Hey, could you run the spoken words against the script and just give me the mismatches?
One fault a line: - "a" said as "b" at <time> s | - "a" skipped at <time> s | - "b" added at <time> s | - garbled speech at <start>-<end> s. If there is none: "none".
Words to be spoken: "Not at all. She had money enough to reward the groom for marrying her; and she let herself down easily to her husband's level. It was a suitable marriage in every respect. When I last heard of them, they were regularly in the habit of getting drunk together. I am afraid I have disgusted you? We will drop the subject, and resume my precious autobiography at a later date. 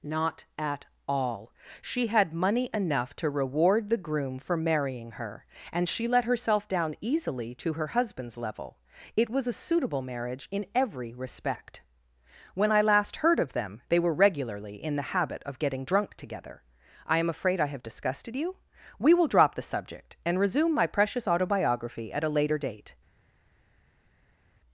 none